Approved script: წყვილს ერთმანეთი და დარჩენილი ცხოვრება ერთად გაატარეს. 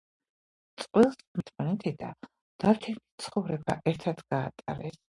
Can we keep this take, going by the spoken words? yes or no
yes